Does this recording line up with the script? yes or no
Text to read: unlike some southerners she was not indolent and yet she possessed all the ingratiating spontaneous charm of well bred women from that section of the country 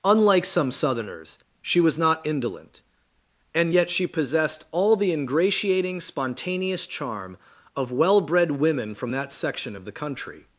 yes